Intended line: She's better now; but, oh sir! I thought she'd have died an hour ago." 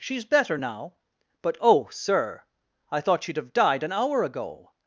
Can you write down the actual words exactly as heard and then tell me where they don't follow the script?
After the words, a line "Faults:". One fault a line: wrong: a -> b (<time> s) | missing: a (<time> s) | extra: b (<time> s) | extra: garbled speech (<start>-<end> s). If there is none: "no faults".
She's better now; but, oh sir! I thought she'd have died an hour ago."
Faults:
no faults